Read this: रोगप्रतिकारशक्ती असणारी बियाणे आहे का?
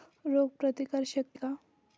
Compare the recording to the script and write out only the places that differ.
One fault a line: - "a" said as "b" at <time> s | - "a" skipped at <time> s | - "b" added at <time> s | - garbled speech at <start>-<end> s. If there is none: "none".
- "असणारी बियाणे आहे" skipped at 1.4 s